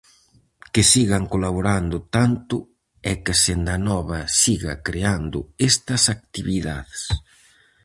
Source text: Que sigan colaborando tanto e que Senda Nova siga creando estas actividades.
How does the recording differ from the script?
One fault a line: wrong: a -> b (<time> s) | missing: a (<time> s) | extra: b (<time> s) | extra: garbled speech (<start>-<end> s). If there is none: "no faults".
no faults